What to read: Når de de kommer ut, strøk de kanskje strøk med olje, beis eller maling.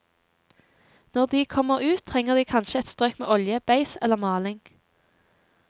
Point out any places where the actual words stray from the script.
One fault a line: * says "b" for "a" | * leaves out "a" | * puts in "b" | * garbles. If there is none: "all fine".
* leaves out "de"
* says "trenger" for "strøk"
* puts in "et"